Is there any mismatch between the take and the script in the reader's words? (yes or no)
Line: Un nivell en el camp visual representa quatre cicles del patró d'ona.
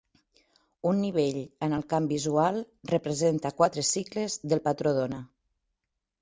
no